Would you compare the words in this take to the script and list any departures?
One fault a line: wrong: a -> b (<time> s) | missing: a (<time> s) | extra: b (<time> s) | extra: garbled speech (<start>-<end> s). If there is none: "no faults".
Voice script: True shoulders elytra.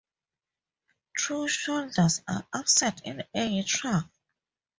extra: are absent in (2.3 s)